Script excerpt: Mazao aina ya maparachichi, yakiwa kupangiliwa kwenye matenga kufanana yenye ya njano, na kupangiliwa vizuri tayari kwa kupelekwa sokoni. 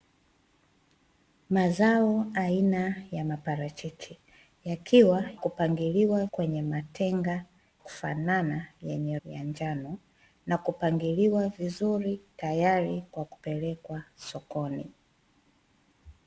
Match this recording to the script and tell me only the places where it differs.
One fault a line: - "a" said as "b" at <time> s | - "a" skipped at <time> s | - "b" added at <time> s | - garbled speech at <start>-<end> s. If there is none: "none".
none